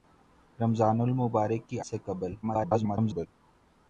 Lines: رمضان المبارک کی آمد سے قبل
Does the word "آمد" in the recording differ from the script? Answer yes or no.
yes